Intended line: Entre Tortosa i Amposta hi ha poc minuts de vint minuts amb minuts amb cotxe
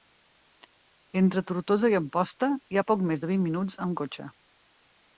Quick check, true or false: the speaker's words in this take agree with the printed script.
false